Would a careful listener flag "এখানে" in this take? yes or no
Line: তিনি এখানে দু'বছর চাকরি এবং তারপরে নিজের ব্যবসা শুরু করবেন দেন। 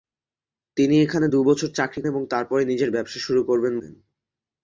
no